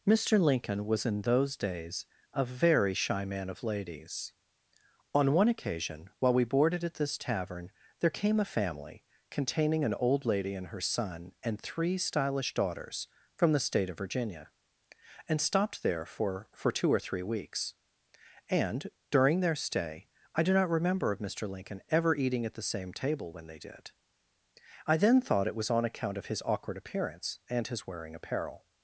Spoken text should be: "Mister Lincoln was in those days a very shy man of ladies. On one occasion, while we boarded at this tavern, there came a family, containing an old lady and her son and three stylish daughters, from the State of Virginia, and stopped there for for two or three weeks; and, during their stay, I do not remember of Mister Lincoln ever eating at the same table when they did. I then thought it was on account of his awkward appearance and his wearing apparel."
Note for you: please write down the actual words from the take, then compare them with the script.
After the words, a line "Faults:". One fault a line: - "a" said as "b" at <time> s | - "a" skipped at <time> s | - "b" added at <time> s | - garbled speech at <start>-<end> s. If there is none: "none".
"Mister Lincoln was in those days a very shy man of ladies. On one occasion, while we boarded at this tavern, there came a family, containing an old lady and her son and three stylish daughters, from the State of Virginia, and stopped there for for two or three weeks; and, during their stay, I do not remember of Mister Lincoln ever eating at the same table when they did. I then thought it was on account of his awkward appearance and his wearing apparel."
Faults:
none